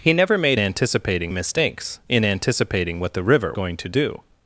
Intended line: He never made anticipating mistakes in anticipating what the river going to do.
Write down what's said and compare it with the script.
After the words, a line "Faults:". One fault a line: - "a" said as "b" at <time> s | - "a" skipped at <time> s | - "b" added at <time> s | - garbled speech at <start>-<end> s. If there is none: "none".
He never made anticipating mistakes in anticipating what the river going to do.
Faults:
none